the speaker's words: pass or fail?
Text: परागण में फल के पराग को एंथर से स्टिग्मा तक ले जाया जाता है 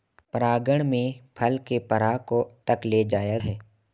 fail